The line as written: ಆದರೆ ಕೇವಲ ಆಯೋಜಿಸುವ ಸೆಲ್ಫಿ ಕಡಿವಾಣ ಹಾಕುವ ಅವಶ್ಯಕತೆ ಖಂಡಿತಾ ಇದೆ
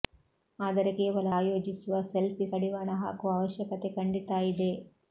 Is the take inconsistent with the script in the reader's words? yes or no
no